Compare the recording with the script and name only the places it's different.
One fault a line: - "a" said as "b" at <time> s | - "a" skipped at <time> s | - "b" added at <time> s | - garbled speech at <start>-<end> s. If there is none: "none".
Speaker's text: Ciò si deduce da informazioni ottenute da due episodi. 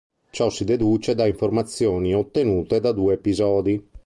none